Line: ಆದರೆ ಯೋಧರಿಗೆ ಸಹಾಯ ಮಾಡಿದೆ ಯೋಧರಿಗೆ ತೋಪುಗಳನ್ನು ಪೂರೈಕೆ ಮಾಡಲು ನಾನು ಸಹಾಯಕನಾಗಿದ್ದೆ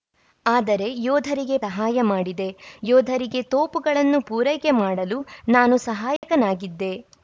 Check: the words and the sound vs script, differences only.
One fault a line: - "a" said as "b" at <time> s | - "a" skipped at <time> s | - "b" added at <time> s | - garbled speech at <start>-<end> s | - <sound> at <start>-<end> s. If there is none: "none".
- dropout at 6.2-6.2 s